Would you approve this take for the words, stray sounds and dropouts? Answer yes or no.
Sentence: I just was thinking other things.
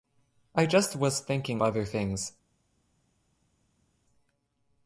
yes